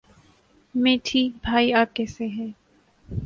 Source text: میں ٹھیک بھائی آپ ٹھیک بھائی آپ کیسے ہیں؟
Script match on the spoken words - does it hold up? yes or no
no